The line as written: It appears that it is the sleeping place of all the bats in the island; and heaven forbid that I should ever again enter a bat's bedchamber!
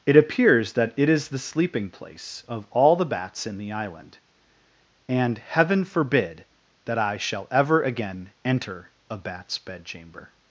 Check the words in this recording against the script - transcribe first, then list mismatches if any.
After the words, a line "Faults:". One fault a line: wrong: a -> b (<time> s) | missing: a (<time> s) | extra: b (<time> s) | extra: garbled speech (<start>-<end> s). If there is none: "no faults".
It appears that it is the sleeping place of all the bats in the island; and heaven forbid that I shall ever again enter a bat's bedchamber!
Faults:
wrong: should -> shall (7.2 s)